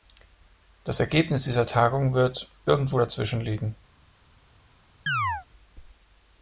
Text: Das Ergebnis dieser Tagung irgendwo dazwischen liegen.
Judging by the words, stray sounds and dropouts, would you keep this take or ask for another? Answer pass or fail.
fail